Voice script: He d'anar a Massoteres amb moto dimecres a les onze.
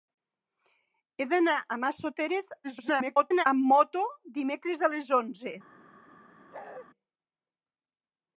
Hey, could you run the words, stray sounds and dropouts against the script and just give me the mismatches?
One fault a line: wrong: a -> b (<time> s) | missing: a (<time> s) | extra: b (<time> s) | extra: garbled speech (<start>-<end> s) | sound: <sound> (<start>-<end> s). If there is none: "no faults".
extra: garbled speech (2.6-3.5 s)
sound: bark (6.5-6.9 s)